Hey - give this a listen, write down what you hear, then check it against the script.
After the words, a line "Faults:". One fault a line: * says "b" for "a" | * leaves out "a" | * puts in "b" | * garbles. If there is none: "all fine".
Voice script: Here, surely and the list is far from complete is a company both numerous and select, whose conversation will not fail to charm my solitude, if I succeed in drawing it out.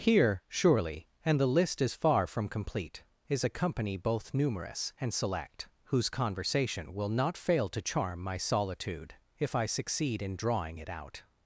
Here, surely and the list is far from complete is a company both numerous and select, whose conversation will not fail to charm my solitude, if I succeed in drawing it out.
Faults:
all fine